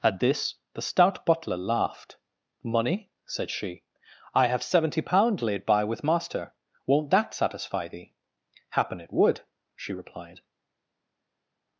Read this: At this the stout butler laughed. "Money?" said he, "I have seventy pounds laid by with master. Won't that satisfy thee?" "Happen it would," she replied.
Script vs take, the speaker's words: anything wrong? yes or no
yes